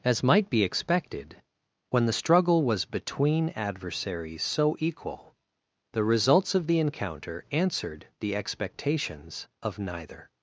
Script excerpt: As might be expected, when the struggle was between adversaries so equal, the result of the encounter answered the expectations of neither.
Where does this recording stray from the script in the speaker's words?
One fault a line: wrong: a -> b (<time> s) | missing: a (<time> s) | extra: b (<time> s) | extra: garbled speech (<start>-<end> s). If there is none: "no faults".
wrong: result -> results (6.0 s)